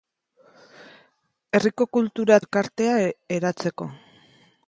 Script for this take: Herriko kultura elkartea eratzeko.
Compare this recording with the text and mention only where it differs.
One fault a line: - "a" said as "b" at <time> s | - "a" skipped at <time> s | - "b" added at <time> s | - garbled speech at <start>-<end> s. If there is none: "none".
none